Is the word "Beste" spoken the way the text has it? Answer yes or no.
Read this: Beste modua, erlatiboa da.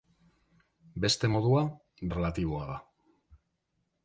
yes